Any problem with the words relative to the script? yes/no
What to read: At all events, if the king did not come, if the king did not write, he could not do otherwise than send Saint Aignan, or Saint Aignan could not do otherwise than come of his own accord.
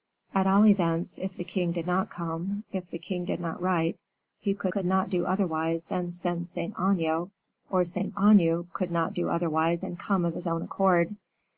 yes